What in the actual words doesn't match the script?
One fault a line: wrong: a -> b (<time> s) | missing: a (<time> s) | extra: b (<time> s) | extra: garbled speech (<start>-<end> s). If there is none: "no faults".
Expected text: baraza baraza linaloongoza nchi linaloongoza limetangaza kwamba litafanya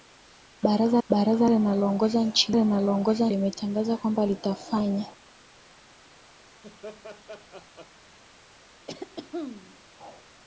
no faults